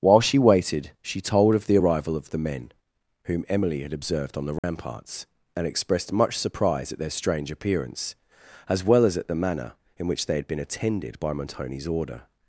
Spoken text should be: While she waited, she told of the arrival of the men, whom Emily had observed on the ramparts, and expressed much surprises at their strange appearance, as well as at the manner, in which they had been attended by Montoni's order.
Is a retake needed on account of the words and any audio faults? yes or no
yes